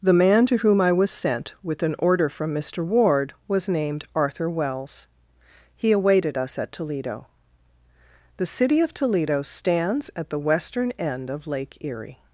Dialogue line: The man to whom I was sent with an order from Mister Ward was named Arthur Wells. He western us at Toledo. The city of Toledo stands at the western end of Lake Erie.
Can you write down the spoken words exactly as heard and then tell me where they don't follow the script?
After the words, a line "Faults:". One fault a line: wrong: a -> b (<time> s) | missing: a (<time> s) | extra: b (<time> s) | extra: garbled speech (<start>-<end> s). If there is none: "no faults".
The man to whom I was sent with an order from Mister Ward was named Arthur Wells. He awaited us at Toledo. The city of Toledo stands at the western end of Lake Erie.
Faults:
wrong: western -> awaited (5.9 s)